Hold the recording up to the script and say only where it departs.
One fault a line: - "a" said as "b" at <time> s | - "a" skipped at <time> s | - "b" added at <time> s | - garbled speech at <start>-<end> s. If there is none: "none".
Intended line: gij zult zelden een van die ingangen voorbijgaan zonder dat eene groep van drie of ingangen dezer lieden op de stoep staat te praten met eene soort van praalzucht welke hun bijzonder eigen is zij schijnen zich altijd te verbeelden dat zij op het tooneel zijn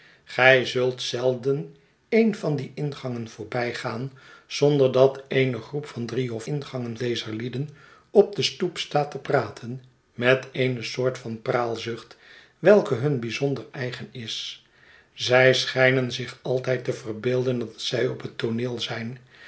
none